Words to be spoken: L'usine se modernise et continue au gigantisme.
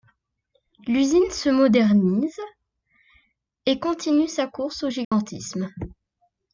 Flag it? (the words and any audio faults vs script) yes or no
yes